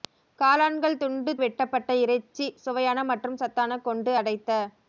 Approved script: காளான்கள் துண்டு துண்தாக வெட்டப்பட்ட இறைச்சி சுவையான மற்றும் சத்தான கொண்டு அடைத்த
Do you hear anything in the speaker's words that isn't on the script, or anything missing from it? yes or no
yes